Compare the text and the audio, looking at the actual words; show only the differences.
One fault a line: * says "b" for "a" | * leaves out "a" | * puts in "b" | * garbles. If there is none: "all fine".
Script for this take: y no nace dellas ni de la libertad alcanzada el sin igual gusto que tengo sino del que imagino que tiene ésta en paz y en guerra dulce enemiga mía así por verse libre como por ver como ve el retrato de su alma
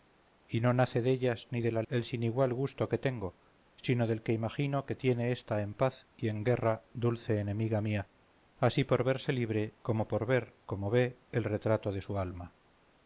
* leaves out "libertad alcanzada"